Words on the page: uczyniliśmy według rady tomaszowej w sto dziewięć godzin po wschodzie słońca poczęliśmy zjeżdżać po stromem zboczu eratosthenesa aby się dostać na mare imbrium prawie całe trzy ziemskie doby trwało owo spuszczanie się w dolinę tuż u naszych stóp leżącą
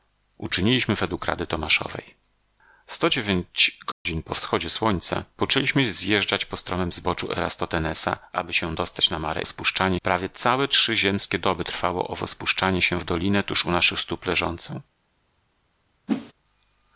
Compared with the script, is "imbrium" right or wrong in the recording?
wrong